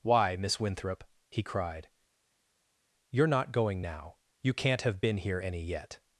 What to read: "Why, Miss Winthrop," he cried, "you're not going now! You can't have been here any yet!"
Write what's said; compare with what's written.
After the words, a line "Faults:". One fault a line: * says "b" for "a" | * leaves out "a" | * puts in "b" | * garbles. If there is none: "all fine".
"Why, Miss Winthrop," he cried, "you're not going now! You can't have been here any yet!"
Faults:
all fine